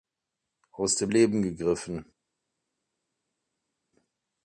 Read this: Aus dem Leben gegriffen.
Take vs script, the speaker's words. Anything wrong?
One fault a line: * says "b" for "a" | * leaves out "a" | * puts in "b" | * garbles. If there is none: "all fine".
all fine